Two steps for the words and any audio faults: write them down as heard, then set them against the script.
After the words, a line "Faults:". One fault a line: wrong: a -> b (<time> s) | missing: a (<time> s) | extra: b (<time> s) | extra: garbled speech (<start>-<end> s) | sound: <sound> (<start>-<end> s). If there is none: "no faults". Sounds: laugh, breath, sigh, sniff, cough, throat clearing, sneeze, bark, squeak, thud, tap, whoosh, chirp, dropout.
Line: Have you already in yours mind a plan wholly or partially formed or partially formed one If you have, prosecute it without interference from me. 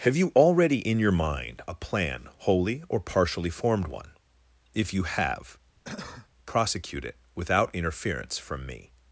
Have you already in your mind a plan wholly or partially formed one If you have, prosecute it without interference from me.
Faults:
wrong: yours -> your (1.0 s)
missing: or partially formed (3.9 s)
sound: cough (5.8-6.3 s)